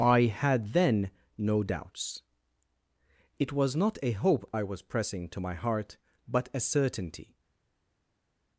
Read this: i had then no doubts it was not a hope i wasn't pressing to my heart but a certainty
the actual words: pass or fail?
fail